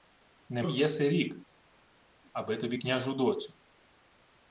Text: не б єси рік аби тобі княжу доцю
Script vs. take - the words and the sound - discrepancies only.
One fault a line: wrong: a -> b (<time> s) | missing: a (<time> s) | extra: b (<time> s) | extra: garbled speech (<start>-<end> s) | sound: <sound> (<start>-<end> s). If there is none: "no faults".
no faults